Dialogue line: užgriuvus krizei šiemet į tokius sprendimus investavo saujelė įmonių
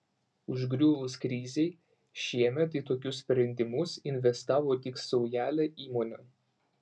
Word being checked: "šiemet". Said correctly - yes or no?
yes